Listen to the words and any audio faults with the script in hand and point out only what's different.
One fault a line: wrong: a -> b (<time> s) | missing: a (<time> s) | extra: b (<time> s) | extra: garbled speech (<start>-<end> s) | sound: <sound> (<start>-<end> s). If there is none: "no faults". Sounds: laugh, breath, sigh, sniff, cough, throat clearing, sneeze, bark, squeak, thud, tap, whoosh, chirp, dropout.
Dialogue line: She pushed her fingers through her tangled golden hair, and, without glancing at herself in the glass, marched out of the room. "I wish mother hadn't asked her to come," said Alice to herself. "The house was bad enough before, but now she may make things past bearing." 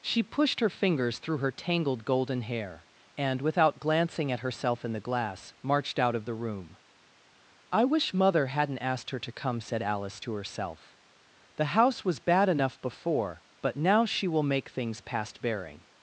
wrong: may -> will (14.3 s)